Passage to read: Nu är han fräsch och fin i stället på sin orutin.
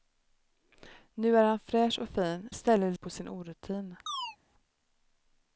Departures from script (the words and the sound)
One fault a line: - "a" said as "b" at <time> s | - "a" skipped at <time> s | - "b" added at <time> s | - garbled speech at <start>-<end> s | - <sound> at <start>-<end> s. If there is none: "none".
- chirp at 4.1-4.4 s